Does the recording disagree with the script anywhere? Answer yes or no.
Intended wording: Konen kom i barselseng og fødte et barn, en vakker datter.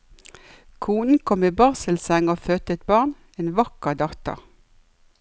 no